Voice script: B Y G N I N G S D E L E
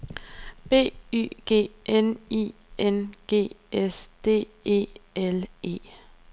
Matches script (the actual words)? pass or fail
pass